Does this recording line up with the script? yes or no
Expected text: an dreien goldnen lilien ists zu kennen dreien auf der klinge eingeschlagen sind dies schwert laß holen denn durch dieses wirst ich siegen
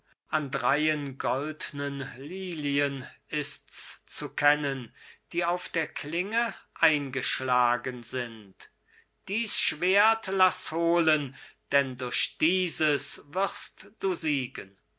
no